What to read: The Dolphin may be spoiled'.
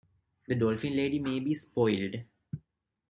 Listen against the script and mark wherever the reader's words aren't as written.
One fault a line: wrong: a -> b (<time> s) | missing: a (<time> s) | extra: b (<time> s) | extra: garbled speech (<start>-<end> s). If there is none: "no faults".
extra: lady (0.9 s)